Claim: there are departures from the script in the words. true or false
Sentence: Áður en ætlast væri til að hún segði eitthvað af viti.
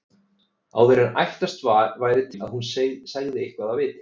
true